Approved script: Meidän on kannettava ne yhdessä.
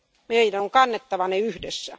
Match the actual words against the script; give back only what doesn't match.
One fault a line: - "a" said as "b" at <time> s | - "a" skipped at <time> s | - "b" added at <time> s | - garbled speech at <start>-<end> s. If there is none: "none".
none